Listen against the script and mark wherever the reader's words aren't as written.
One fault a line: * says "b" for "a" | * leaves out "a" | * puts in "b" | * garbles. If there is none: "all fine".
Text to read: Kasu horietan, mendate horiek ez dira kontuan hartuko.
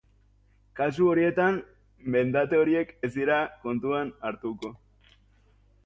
all fine